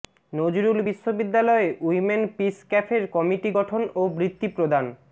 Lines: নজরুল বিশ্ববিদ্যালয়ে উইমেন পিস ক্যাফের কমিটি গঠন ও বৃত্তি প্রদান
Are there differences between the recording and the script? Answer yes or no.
no